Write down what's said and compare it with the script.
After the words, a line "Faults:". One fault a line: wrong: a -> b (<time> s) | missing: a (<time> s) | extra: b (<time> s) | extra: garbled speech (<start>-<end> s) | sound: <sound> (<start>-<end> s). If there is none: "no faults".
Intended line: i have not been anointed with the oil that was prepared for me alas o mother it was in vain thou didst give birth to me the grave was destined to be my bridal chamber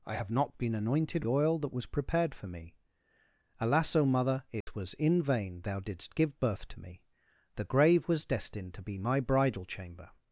i have not been anointed oil that was prepared for me alas o mother it was in vain thou didst give birth to me the grave was destined to be my bridal chamber
Faults:
missing: with the (1.2 s)
sound: dropout (4.6-4.7 s)